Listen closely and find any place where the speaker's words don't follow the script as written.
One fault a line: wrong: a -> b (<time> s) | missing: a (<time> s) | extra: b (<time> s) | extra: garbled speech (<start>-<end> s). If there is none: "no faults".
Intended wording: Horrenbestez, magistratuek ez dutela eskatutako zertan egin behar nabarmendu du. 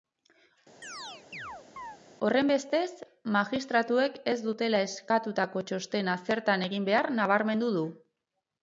extra: txostena (5.7 s)